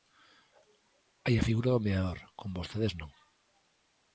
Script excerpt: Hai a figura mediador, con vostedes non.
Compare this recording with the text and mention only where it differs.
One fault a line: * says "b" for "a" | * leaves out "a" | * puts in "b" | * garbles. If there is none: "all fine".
* puts in "do"